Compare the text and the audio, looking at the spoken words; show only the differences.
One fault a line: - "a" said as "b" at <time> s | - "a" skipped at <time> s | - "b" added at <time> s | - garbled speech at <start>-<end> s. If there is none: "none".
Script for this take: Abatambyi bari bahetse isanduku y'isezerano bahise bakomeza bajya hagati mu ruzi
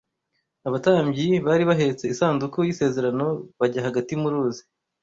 - "bahise bakomeza" skipped at 3.3 s